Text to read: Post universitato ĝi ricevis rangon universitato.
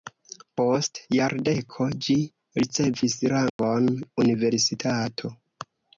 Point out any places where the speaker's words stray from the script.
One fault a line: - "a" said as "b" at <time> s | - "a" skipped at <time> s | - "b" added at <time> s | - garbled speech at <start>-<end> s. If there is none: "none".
- "universitato" said as "jardeko" at 1.1 s